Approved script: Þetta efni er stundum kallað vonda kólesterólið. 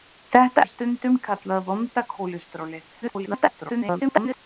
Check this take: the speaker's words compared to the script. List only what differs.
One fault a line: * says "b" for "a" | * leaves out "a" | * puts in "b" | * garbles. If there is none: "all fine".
* leaves out "efni"
* garbles